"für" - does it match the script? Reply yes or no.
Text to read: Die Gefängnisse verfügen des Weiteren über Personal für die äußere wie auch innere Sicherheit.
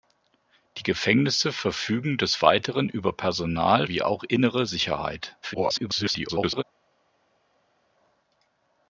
no